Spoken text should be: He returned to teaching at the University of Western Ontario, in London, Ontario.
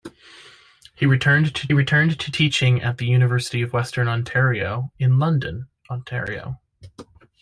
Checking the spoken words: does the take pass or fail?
fail